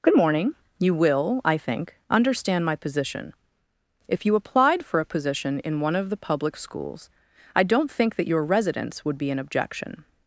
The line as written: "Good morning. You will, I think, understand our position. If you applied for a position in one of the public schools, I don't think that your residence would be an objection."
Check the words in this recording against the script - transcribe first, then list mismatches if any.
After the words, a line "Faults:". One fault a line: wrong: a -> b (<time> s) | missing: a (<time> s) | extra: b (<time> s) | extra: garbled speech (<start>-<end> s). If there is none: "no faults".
"Good morning. You will, I think, understand my position. If you applied for a position in one of the public schools, I don't think that your residence would be an objection."
Faults:
wrong: our -> my (2.6 s)